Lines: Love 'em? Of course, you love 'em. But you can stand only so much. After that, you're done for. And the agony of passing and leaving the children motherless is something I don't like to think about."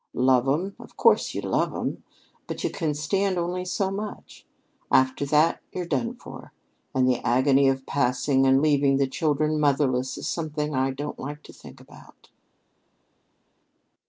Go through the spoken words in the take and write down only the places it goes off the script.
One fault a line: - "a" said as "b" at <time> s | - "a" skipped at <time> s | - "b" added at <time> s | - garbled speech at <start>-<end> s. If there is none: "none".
none